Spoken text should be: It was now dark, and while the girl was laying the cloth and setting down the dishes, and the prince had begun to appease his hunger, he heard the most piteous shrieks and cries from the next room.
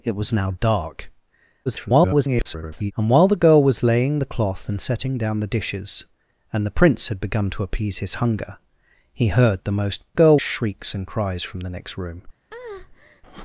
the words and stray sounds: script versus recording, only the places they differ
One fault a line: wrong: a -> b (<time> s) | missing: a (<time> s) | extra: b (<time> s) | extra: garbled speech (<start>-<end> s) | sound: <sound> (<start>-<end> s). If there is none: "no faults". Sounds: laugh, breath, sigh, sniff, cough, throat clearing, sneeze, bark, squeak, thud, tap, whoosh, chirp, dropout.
extra: garbled speech (1.7-2.9 s)
wrong: piteous -> girl (10.1 s)
sound: breath (12.5-13.2 s)